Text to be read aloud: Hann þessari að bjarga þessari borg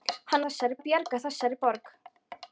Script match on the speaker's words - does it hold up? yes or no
yes